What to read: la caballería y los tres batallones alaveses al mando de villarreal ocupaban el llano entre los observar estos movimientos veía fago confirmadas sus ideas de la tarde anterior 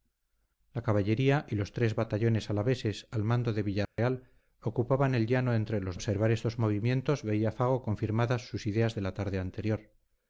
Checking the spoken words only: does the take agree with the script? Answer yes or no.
yes